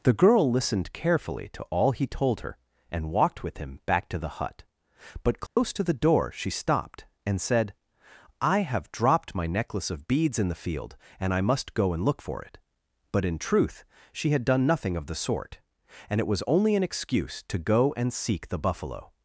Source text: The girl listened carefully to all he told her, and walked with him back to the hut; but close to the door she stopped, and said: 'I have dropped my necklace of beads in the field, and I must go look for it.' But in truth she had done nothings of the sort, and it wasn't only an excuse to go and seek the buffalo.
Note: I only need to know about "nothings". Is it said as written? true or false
false